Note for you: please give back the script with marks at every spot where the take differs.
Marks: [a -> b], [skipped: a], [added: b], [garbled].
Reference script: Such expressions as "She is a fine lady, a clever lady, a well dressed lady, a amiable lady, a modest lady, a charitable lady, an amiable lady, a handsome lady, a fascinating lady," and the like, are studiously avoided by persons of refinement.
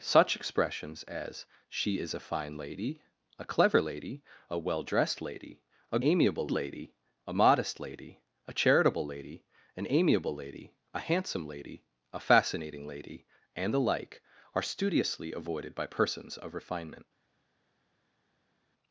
Such expressions as "She is a fine lady, a clever lady, a well dressed lady, a amiable lady, a modest lady, a charitable lady, an amiable lady, a handsome lady, a fascinating lady," and the like, are studiously avoided by persons of refinement.